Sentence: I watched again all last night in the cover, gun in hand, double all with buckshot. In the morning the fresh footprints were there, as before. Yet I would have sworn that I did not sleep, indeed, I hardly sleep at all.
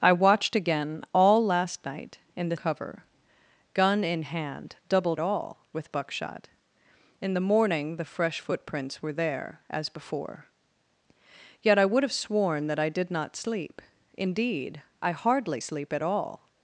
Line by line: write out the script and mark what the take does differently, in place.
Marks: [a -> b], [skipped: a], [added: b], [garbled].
I watched again all last night in the cover, gun in hand, double all with buckshot. In the morning the fresh footprints were there, as before. Yet I would have sworn that I did not sleep, indeed, I hardly sleep at all.